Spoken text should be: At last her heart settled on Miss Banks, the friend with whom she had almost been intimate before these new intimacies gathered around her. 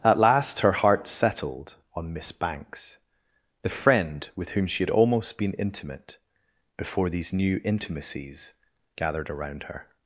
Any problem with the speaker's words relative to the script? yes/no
no